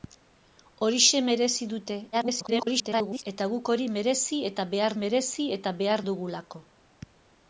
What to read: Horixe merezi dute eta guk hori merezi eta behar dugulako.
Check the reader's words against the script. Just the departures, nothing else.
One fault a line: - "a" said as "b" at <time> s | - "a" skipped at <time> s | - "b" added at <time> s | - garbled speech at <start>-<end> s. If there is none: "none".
- garbled speech at 2.1-3.2 s
- "merezi eta behar" added at 5.0 s